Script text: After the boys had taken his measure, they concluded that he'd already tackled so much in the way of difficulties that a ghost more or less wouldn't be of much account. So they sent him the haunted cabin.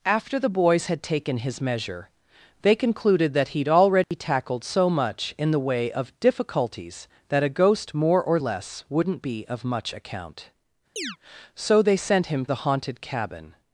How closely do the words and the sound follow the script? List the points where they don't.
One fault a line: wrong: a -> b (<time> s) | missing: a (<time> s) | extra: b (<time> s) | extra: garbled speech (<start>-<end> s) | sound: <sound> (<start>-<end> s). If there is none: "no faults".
sound: dropout (4.0-4.1 s)
sound: chirp (11.0-11.2 s)